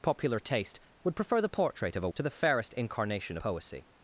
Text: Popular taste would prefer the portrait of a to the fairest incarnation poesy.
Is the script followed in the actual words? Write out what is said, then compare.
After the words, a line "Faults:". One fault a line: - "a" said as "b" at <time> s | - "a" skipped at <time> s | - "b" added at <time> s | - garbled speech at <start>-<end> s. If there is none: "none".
Popular taste would prefer the portrait of a to the fairest incarnation poesy.
Faults:
none